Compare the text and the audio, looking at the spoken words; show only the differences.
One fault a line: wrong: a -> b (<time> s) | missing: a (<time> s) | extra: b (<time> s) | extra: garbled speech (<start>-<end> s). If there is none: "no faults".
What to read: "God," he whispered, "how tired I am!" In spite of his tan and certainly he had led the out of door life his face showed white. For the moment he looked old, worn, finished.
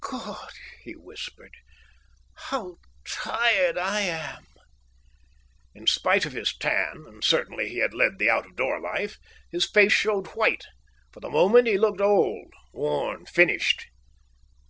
no faults